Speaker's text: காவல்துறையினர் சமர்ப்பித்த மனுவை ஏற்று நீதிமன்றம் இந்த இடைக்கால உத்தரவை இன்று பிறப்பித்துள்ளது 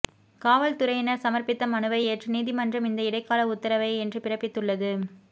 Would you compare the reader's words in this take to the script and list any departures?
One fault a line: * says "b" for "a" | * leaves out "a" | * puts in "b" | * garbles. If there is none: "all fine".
all fine